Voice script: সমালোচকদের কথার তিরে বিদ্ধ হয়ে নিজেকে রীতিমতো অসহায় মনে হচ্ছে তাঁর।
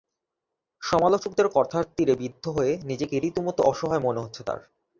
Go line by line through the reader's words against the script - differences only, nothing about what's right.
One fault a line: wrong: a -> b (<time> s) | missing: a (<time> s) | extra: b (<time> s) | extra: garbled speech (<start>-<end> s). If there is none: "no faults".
no faults